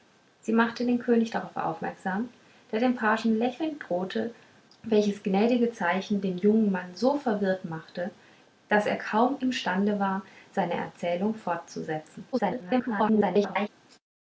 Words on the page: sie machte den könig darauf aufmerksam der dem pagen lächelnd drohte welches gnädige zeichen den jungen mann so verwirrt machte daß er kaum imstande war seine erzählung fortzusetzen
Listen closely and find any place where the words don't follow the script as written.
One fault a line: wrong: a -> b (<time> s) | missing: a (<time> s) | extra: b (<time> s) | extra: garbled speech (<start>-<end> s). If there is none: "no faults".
extra: garbled speech (12.3-13.7 s)